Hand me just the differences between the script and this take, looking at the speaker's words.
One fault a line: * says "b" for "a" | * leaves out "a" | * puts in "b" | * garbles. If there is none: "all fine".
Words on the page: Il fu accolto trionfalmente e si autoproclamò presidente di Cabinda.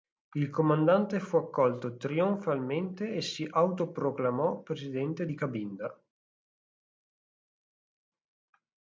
* puts in "comandante"